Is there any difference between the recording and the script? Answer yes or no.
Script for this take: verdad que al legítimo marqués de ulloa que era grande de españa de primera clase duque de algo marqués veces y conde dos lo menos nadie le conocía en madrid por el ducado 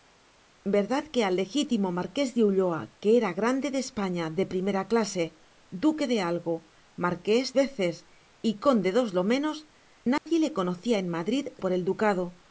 no